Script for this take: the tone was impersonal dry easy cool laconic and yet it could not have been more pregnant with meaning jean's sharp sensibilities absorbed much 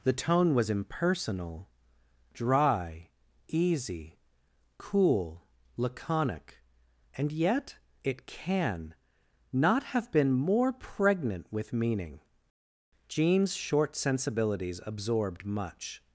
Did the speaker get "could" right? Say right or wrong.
wrong